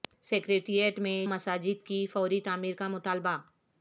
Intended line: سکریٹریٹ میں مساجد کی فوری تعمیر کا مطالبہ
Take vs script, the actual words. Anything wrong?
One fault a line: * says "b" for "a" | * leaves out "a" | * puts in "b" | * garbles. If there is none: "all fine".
all fine